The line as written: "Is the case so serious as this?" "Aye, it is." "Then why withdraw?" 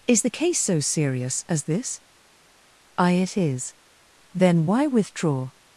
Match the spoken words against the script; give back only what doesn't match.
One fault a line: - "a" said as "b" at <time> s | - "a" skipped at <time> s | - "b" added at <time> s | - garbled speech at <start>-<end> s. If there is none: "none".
none